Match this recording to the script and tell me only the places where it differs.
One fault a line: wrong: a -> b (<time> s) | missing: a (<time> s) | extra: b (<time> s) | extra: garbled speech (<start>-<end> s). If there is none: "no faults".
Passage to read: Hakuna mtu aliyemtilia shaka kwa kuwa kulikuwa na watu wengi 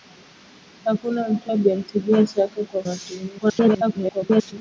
missing: kuwa kulikuwa na (2.8 s)
extra: garbled speech (3.4-4.5 s)